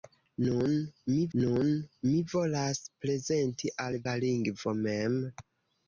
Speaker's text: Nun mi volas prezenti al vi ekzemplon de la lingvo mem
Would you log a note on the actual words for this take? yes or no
yes